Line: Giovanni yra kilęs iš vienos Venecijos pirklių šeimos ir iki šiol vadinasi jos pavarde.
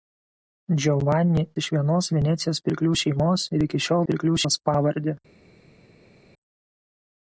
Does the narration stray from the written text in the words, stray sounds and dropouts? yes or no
yes